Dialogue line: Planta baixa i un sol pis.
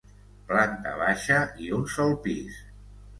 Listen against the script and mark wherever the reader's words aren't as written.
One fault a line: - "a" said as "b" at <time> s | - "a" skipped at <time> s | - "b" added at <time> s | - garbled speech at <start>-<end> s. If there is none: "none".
none